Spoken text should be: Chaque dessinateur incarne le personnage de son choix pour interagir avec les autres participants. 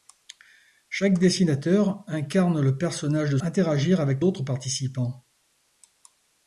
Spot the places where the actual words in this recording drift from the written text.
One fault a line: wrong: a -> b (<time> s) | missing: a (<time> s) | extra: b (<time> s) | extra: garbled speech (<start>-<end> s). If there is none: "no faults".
missing: son choix pour (3.4 s)
missing: les (4.2 s)